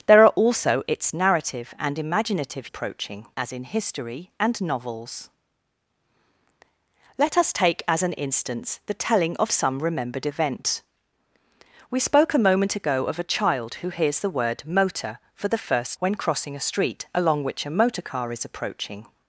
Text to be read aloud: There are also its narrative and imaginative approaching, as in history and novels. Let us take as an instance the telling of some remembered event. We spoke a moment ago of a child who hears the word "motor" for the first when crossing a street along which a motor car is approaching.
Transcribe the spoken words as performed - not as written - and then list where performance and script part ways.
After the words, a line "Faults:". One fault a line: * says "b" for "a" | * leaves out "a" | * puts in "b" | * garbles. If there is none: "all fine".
There are also its narrative and imaginative approaching, as in history and novels. Let us take as an instance the telling of some remembered event. We spoke a moment ago of a child who hears the word "motor" for the first when crossing a street along which a motor car is approaching.
Faults:
all fine